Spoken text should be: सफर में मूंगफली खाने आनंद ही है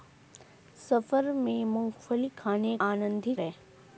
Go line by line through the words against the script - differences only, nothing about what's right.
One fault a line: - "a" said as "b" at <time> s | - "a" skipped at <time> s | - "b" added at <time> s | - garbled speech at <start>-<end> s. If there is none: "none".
none